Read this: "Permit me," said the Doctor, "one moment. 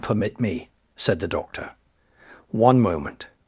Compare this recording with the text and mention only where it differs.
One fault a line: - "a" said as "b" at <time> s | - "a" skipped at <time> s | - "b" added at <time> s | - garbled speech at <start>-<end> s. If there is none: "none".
none